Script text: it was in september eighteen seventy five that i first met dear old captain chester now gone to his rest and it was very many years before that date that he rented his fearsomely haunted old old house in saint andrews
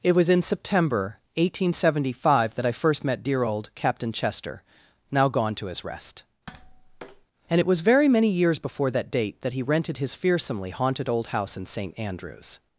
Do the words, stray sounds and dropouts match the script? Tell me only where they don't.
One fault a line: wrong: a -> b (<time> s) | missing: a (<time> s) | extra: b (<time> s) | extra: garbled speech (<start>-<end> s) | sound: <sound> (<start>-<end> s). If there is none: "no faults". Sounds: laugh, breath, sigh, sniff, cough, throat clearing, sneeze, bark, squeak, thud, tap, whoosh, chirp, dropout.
sound: tap (6.5-7.3 s)
missing: old (11.3 s)